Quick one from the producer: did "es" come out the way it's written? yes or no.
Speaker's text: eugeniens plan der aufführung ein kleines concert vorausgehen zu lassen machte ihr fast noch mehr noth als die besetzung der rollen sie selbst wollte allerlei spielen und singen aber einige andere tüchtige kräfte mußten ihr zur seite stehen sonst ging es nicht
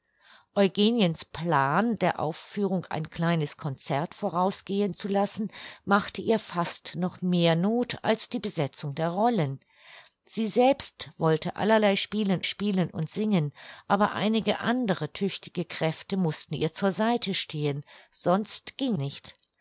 no